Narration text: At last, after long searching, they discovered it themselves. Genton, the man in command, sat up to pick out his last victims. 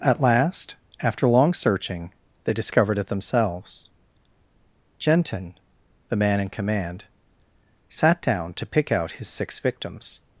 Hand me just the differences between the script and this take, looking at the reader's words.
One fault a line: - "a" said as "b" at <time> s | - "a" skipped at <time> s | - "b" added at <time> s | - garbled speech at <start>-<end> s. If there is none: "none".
- "up" said as "down" at 8.2 s
- "last" said as "six" at 9.3 s